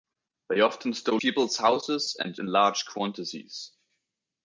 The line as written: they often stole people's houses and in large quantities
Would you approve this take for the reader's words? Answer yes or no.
yes